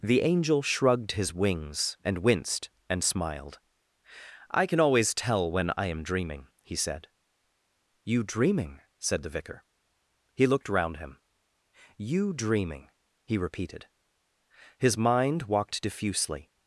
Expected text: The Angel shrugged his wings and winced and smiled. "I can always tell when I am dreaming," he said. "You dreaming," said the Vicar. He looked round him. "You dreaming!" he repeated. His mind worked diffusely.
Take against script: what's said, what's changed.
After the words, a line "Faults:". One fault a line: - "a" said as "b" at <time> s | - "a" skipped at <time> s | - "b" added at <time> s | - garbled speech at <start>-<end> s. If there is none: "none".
The Angel shrugged his wings and winced and smiled. "I can always tell when I am dreaming," he said. "You dreaming," said the Vicar. He looked round him. "You dreaming!" he repeated. His mind walked diffusely.
Faults:
- "worked" said as "walked" at 15.4 s